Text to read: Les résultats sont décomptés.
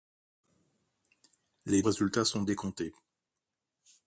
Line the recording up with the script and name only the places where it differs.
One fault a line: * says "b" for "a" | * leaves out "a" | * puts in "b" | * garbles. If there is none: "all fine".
all fine